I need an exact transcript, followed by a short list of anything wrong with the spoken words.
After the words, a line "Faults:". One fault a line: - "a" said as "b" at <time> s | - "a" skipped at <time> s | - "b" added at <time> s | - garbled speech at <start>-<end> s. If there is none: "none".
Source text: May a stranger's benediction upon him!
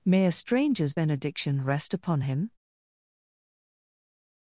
May a stranger's benediction rest upon him!
Faults:
- "rest" added at 1.6 s